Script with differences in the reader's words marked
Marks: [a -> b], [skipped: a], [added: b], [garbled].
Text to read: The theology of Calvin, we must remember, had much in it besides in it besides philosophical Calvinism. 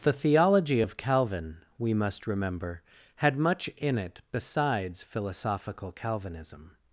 The theology of Calvin, we must remember, had much in it besides [skipped: in it besides] philosophical Calvinism.